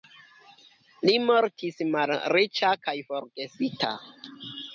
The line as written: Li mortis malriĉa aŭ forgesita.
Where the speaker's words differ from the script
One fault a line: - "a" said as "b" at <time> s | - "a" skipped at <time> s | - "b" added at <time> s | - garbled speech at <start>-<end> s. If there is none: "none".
- "aŭ" said as "kaj" at 2.9 s